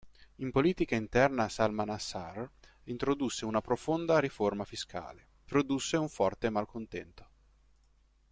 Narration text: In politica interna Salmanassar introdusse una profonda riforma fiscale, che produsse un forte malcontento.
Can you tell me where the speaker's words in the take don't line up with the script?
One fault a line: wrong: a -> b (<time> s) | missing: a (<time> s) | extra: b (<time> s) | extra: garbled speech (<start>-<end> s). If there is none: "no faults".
missing: che (5.3 s)